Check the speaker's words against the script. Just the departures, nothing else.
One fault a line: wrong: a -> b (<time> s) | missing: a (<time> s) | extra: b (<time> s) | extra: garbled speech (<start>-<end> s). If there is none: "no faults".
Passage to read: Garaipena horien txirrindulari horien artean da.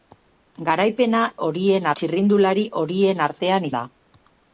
no faults